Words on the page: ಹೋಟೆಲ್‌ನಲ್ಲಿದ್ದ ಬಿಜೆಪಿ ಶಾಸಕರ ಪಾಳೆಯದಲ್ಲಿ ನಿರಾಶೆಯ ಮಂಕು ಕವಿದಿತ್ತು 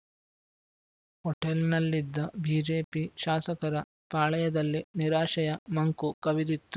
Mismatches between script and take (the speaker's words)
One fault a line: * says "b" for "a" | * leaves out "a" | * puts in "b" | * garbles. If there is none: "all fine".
all fine